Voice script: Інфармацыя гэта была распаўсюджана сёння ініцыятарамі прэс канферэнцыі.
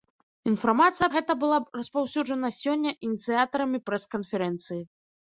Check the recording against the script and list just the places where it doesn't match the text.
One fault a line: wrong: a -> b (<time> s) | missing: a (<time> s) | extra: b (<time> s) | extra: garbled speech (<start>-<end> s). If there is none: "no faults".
no faults